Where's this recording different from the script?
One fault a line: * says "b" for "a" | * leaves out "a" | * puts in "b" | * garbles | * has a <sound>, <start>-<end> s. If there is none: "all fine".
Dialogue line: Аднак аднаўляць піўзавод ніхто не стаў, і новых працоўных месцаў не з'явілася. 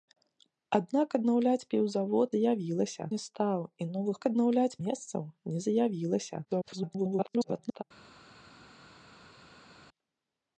* says "з'явілася" for "ніхто"
* says "аднаўляць" for "працоўных"
* garbles